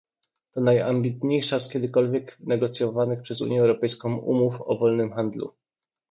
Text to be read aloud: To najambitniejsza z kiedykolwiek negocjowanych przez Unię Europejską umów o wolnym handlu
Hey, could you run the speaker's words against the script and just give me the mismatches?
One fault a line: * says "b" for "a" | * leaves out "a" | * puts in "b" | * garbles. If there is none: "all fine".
all fine